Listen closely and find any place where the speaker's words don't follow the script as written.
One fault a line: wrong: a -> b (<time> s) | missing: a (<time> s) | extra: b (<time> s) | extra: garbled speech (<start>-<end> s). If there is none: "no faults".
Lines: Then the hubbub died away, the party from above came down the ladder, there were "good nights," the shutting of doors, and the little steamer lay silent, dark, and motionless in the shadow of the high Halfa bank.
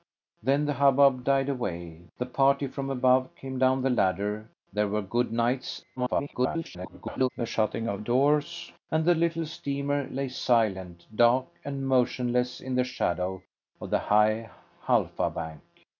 extra: garbled speech (6.0-7.3 s)